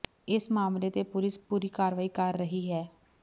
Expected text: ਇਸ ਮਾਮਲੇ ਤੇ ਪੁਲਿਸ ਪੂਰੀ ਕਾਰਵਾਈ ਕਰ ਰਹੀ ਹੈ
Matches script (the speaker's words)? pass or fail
pass